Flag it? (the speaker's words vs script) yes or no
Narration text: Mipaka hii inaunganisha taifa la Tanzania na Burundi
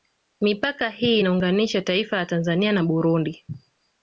no